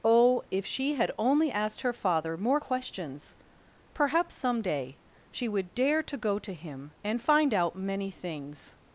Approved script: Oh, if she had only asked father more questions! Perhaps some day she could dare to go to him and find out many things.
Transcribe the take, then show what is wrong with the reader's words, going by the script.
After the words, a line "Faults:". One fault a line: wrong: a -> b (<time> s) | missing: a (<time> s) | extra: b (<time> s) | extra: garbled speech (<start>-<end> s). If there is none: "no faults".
Oh, if she had only asked her father more questions! Perhaps some day she would dare to go to him and find out many things.
Faults:
extra: her (1.8 s)
wrong: could -> would (5.5 s)